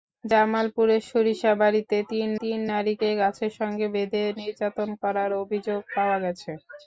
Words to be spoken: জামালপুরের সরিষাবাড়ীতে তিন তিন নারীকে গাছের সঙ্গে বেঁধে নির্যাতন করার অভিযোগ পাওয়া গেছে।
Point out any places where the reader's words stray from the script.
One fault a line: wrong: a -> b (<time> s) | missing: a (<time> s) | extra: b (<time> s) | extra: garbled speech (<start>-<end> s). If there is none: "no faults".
no faults